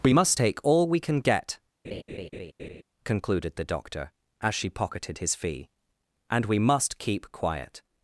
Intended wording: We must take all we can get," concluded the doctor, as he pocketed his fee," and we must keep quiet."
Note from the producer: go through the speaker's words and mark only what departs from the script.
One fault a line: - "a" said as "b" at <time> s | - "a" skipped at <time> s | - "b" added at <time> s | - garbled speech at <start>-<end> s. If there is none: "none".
- "he" said as "she" at 4.6 s